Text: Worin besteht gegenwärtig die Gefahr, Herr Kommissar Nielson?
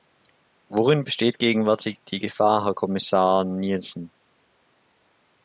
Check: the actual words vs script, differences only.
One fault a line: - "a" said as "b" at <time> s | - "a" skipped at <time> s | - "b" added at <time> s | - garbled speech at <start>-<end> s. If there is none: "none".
none